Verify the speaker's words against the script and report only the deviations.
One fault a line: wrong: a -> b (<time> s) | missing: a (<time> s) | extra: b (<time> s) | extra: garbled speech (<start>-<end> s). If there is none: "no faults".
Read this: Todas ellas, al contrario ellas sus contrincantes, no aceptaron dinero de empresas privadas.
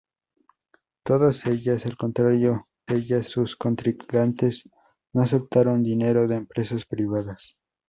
no faults